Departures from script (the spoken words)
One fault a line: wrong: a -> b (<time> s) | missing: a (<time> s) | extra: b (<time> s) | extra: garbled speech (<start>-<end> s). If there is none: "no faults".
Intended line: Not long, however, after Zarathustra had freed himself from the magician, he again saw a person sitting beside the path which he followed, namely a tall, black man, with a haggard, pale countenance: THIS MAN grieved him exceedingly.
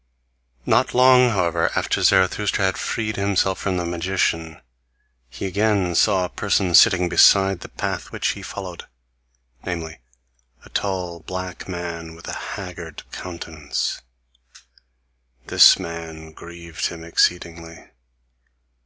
missing: pale (13.0 s)